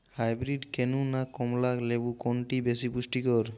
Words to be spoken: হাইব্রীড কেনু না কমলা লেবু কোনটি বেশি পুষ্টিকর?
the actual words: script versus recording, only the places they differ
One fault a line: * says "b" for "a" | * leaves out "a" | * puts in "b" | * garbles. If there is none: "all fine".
all fine